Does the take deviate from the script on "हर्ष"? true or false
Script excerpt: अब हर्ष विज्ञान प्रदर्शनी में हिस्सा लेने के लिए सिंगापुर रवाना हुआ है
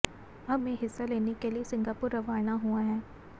true